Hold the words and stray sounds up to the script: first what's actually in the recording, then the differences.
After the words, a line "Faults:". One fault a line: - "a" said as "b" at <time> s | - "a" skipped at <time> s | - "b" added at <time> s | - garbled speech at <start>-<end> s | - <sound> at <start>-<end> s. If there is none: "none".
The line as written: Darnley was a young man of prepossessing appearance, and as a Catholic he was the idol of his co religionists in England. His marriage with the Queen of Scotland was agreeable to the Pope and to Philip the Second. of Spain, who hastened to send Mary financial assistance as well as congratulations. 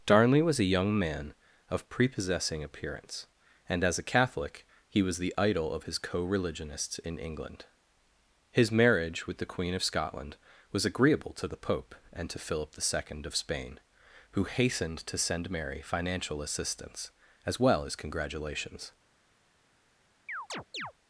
Darnley was a young man of prepossessing appearance, and as a Catholic he was the idol of his co religionists in England. His marriage with the Queen of Scotland was agreeable to the Pope and to Philip the Second. of Spain, who hastened to send Mary financial assistance as well as congratulations.
Faults:
- chirp at 20.3-20.9 s